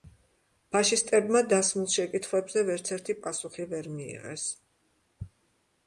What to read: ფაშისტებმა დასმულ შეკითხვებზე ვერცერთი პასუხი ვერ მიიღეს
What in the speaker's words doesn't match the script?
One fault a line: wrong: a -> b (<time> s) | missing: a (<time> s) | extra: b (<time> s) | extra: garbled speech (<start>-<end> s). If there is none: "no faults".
no faults